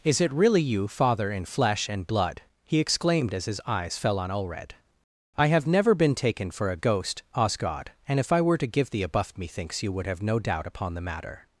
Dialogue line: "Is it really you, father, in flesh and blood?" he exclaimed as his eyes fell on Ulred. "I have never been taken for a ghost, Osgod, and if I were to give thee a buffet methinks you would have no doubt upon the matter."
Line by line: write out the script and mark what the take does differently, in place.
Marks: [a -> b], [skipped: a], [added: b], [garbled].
"Is it really you, father, in flesh and blood?" he exclaimed as his eyes fell on Ulred. "I have never been taken for a ghost, Osgod, and if I were to give thee a [buffet -> buff] methinks you would have no doubt upon the matter."